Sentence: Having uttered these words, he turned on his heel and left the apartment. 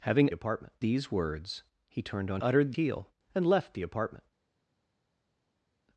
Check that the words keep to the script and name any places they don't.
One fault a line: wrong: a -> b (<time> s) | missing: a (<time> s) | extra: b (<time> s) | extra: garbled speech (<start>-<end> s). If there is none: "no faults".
wrong: uttered -> apartment (0.3 s)
wrong: his -> uttered (2.4 s)